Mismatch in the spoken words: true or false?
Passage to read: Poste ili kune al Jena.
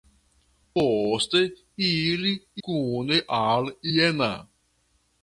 false